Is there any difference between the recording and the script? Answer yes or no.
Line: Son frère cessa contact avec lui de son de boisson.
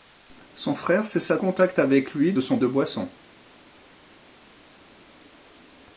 no